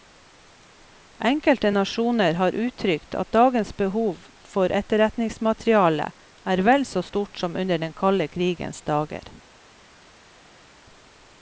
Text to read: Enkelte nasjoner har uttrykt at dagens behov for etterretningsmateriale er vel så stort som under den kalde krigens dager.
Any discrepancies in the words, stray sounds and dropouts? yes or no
no